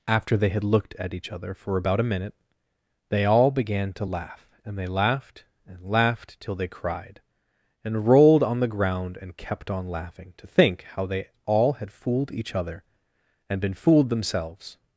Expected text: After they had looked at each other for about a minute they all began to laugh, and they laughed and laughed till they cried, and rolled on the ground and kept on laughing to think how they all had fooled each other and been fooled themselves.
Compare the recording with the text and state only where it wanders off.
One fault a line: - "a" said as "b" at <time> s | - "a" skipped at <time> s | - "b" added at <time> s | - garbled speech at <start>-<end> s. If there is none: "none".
none